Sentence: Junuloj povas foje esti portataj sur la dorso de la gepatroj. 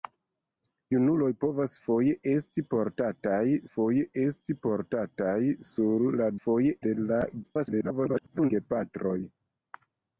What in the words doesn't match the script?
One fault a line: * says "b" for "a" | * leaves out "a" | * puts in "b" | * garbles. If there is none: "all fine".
* puts in "foje esti portataj"
* says "foje" for "dorso"
* garbles